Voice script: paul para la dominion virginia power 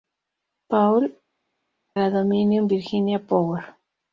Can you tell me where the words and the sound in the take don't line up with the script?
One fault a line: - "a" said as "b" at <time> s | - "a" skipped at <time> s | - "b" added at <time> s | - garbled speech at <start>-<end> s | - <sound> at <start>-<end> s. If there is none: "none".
- "para" skipped at 1.1 s